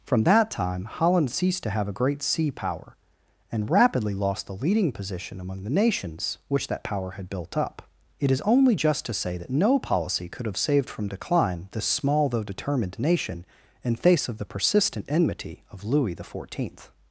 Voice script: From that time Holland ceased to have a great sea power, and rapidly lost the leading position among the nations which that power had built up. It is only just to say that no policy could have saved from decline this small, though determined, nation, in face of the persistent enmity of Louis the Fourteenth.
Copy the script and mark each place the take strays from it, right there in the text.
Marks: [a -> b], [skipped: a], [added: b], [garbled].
From that time Holland ceased to have a great sea power, and rapidly lost the leading position among the nations which that power had built up. It is only just to say that no policy could have saved from decline this small, though determined, nation, in face of the persistent enmity of Louis the Fourteenth.